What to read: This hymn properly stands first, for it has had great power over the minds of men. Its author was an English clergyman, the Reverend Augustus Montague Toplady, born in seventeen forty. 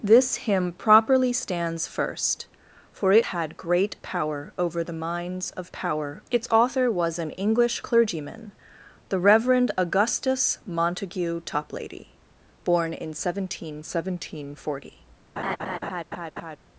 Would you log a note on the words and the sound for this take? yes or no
yes